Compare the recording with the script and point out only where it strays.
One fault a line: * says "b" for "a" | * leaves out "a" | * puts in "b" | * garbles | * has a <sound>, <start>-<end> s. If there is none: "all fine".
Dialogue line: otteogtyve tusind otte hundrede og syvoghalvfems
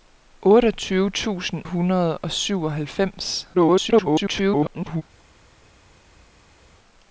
* leaves out "otte"
* garbles